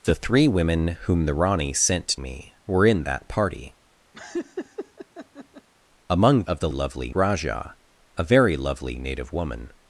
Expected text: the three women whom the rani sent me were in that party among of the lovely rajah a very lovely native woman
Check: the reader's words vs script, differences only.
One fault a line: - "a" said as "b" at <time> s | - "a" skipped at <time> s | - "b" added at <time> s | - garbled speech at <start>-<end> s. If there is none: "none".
none